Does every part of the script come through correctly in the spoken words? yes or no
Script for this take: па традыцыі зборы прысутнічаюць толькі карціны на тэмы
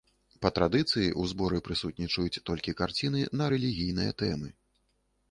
no